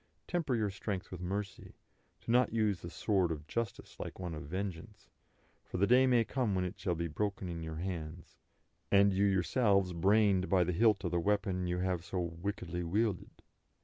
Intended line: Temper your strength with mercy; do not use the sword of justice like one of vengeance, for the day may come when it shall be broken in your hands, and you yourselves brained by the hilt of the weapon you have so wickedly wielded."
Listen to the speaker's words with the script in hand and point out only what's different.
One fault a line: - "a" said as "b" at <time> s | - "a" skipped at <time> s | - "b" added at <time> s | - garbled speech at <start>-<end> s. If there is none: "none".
none